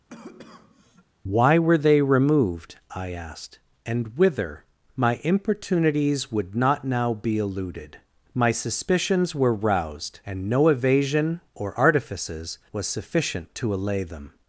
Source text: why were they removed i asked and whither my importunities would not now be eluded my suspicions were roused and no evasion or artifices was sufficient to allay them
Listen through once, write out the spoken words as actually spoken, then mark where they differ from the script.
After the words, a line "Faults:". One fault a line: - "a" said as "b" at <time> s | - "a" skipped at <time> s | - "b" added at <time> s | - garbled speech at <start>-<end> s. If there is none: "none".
why were they removed i asked and whither my importunities would not now be eluded my suspicions were roused and no evasion or artifices was sufficient to allay them
Faults:
none